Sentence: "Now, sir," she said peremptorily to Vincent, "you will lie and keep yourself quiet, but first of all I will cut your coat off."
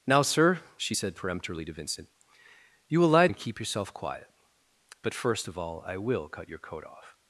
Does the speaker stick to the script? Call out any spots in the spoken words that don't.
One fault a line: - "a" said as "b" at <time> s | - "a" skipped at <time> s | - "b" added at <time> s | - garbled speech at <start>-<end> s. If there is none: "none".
none